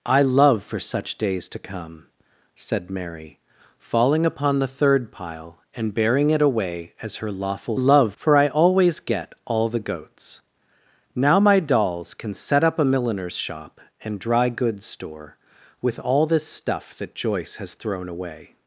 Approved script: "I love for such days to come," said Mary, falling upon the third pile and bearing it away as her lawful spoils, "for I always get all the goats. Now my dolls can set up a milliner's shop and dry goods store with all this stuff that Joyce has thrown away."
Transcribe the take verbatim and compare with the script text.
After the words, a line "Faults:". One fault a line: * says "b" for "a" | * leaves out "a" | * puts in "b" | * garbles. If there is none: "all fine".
"I love for such days to come," said Mary, falling upon the third pile and bearing it away as her lawful love, "for I always get all the goats. Now my dolls can set up a milliner's shop and dry goods store with all this stuff that Joyce has thrown away."
Faults:
* says "love" for "spoils"